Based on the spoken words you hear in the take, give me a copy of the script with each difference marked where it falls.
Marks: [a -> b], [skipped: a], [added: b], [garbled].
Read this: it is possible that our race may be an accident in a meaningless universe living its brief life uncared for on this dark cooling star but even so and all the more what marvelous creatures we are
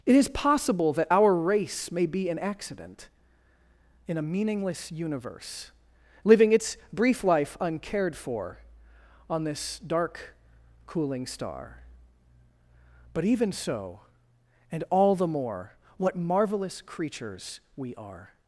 it is possible that our race may be an accident in a meaningless universe living its brief life uncared for on this dark cooling star but even so and all the more what marvelous creatures we are